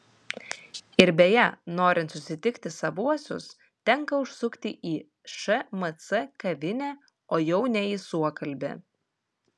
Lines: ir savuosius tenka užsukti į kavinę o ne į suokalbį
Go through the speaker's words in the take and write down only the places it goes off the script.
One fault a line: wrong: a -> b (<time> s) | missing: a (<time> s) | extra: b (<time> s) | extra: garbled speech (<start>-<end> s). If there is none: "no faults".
extra: beje norint susitikti (1.2 s)
extra: šmc (5.3 s)
extra: jau (7.5 s)